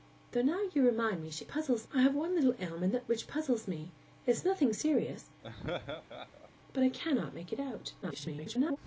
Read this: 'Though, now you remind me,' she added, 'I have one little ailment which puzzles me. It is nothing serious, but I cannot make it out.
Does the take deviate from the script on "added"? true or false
true